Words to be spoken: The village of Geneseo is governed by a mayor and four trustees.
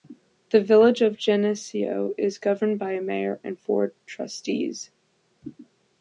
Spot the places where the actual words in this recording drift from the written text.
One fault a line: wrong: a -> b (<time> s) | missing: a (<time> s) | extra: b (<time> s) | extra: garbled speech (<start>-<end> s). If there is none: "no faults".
no faults